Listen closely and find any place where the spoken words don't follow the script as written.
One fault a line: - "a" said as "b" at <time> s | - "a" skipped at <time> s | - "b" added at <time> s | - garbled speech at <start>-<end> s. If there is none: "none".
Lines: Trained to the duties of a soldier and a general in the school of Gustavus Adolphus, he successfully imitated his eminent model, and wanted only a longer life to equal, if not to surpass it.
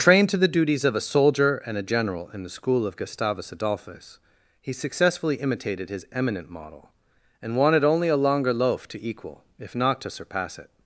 - "life" said as "loaf" at 8.5 s